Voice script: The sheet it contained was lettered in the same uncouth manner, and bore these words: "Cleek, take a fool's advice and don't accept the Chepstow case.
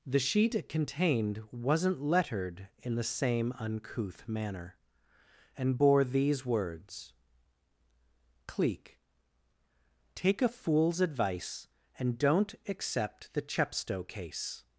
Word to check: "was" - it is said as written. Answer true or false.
false